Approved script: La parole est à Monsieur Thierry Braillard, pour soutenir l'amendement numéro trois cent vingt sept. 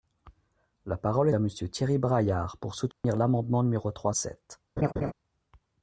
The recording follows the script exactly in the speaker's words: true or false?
false